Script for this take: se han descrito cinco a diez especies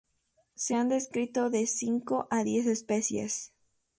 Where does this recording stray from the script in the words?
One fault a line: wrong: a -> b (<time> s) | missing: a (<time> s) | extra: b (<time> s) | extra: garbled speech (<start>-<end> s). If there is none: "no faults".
extra: de (1.5 s)